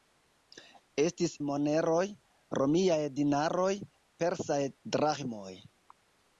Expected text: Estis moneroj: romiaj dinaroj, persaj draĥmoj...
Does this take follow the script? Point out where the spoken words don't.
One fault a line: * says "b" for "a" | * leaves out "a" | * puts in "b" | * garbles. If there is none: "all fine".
all fine